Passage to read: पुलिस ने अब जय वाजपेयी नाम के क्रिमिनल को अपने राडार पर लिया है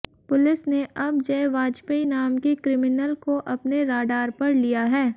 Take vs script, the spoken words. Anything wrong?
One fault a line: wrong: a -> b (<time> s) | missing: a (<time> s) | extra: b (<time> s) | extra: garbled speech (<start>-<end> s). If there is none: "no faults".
no faults